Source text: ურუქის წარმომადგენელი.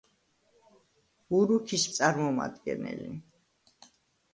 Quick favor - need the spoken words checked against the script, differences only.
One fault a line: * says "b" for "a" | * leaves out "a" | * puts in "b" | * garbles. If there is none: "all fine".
all fine